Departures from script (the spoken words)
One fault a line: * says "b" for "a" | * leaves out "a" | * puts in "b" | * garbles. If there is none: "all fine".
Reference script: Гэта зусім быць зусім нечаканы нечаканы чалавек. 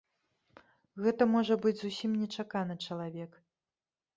* says "можа" for "зусім"
* leaves out "нечаканы"